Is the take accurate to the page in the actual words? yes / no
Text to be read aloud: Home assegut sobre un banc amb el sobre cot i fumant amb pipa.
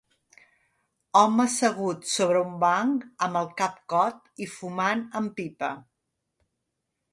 no